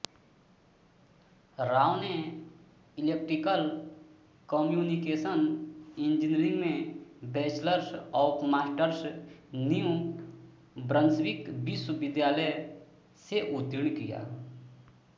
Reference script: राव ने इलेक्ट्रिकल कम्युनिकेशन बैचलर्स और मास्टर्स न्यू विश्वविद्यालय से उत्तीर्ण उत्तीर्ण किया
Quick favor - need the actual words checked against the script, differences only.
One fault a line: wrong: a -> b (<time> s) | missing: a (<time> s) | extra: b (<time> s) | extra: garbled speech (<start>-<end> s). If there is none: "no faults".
extra: इंजीनियरिंग में (6.0 s)
extra: ब्रंसविक (10.9 s)
missing: उत्तीर्ण (14.0 s)